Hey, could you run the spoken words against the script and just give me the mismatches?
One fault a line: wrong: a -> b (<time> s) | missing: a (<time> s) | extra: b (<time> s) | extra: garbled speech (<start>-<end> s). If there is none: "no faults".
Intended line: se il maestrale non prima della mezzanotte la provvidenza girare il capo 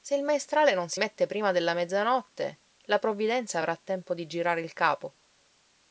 extra: si mette (0.9 s)
extra: avrà tempo di (3.6 s)